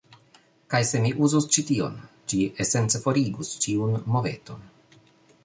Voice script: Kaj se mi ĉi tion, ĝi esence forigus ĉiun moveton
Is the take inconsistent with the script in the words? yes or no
yes